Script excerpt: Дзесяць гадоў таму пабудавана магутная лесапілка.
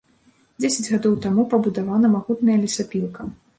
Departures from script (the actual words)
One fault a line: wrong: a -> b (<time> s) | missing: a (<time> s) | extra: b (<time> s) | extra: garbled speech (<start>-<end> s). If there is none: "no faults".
no faults